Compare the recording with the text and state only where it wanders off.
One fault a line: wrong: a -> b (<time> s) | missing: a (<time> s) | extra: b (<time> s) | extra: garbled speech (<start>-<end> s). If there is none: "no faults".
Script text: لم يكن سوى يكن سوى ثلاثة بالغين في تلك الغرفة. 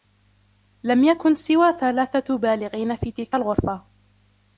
missing: يكن سوى (1.7 s)